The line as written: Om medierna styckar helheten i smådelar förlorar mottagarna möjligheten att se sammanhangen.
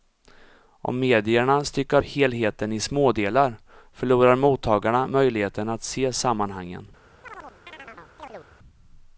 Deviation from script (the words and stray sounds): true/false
true